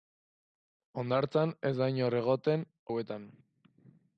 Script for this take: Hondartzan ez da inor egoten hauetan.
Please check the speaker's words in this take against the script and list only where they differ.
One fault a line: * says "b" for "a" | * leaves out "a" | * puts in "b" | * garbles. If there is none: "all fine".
all fine